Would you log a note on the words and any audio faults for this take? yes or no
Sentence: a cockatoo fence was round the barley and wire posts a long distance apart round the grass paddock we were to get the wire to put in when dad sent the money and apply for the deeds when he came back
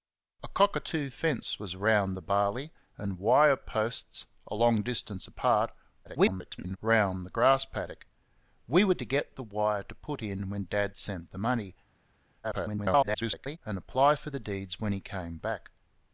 yes